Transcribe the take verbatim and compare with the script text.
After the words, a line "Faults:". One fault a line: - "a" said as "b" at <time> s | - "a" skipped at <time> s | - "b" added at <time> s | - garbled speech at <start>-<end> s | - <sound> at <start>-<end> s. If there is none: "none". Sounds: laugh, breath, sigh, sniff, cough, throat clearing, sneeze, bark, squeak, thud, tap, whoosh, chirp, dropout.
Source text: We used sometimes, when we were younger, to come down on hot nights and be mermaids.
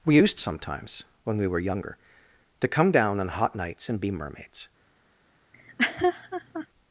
We used sometimes, when we were younger, to come down on hot nights and be mermaids.
Faults:
- laugh at 5.5-6.7 s